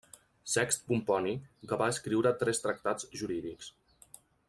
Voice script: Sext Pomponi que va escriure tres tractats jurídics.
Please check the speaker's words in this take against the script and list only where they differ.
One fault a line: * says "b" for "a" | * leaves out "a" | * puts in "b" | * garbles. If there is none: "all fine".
all fine